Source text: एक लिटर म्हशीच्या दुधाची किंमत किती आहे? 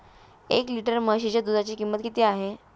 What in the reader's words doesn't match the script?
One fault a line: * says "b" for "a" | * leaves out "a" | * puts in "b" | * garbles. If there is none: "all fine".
all fine